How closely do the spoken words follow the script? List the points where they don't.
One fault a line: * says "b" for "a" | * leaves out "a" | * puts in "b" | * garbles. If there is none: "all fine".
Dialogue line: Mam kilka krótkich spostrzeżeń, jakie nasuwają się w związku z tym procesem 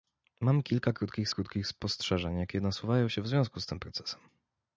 * puts in "krótkich"